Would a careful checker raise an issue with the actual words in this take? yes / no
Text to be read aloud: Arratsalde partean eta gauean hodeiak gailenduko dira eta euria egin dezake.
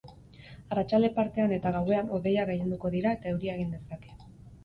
no